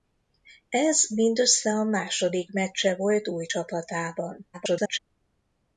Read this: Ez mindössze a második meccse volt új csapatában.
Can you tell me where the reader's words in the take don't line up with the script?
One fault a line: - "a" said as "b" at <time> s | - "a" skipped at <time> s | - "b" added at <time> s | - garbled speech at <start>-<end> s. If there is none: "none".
- garbled speech at 4.5-5.0 s